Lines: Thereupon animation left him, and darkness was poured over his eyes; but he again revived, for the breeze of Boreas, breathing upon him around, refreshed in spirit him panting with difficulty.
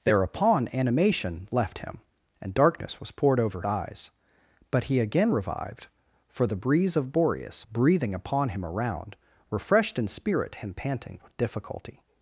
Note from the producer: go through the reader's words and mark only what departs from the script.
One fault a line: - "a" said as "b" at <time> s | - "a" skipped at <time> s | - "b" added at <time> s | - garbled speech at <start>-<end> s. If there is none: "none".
- "his" skipped at 3.6 s